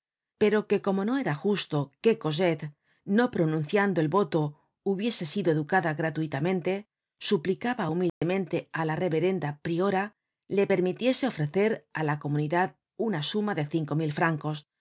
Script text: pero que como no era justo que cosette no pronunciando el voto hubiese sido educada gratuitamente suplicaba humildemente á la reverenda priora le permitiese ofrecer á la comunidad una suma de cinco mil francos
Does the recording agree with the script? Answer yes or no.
yes